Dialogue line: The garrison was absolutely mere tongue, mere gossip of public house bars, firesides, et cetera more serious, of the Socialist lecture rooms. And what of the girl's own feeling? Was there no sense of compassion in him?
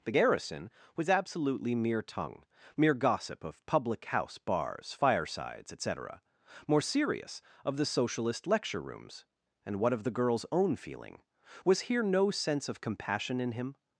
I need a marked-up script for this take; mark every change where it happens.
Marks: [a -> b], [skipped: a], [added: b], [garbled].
The garrison was absolutely mere tongue, mere gossip of public house bars, firesides, et cetera more serious, of the Socialist lecture rooms. And what of the girl's own feeling? Was [there -> here] no sense of compassion in him?